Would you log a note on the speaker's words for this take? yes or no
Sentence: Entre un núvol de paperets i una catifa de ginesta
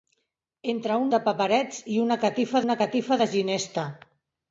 yes